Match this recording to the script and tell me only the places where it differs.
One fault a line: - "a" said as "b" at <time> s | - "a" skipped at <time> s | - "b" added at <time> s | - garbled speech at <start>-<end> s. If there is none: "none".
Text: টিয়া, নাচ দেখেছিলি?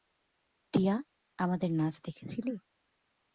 - "আমাদের" added at 1.4 s